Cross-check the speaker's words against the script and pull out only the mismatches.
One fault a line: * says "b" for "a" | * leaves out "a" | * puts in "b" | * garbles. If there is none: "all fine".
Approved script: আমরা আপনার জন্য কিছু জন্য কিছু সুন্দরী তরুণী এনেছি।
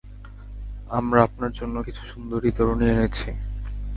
* leaves out "জন্য কিছু"